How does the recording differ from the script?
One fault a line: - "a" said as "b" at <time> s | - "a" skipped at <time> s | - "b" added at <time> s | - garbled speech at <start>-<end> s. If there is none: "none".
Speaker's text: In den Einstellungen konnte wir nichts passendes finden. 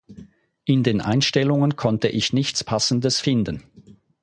- "wir" said as "ich" at 2.1 s